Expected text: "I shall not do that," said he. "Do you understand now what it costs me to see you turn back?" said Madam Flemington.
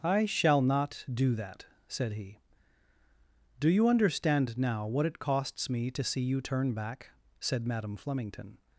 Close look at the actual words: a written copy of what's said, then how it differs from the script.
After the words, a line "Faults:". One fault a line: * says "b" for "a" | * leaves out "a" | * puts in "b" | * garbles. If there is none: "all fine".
"I shall not do that," said he. "Do you understand now what it costs me to see you turn back?" said Madam Flemington.
Faults:
all fine